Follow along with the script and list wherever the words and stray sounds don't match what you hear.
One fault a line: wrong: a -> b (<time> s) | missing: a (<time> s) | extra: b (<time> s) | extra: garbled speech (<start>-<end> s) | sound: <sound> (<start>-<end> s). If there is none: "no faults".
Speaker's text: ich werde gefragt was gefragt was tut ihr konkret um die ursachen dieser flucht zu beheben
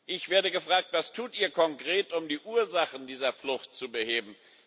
missing: gefragt was (1.1 s)